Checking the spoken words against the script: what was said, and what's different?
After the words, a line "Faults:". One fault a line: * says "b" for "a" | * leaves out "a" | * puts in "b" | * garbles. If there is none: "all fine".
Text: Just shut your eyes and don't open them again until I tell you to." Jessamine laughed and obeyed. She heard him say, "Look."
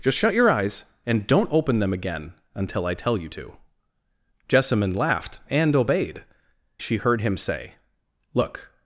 Just shut your eyes and don't open them again until I tell you to." Jessamine laughed and obeyed. She heard him say, "Look."
Faults:
all fine